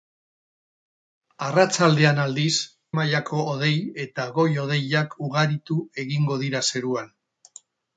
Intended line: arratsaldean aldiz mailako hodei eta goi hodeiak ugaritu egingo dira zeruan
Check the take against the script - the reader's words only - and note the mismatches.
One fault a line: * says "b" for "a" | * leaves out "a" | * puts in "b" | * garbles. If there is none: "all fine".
all fine